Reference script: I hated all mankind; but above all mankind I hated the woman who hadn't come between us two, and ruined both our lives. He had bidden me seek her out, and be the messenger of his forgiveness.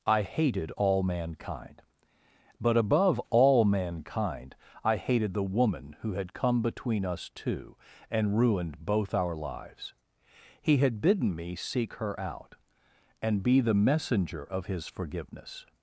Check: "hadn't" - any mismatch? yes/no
yes